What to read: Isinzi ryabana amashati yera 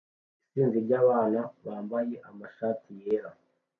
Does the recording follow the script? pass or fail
fail